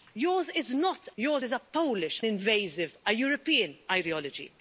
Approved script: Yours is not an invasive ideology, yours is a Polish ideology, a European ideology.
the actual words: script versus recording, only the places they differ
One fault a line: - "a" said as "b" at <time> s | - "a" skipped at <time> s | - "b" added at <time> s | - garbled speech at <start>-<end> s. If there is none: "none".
- "an invasive ideology" skipped at 1.1 s
- "ideology" said as "invasive" at 2.3 s